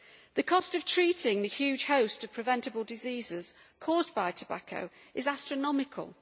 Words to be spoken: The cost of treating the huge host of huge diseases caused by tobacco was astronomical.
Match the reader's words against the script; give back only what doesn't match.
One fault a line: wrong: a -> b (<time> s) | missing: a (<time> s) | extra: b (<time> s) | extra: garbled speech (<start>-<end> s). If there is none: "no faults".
wrong: huge -> preventable (2.3 s)
wrong: was -> is (5.1 s)